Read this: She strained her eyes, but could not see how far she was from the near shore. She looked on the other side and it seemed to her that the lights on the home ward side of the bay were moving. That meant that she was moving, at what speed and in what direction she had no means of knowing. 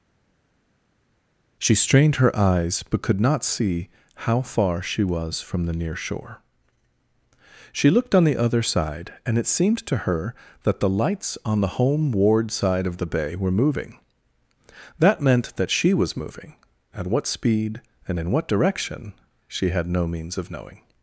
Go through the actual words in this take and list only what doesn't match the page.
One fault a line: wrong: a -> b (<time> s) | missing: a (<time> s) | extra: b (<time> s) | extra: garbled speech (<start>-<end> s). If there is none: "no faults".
no faults